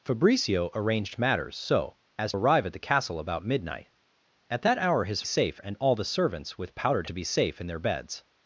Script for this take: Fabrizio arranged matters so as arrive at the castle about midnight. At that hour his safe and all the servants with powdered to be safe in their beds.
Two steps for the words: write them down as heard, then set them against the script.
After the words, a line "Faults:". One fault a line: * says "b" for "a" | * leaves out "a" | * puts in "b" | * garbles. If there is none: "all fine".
Fabrizio arranged matters so as arrive at the castle about midnight. At that hour his safe and all the servants with powdered to be safe in their beds.
Faults:
all fine